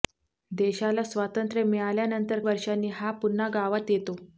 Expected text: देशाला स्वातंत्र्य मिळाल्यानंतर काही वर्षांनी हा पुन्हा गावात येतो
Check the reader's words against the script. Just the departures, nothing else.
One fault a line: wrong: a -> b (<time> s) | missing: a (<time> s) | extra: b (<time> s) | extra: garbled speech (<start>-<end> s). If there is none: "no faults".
missing: काही (2.4 s)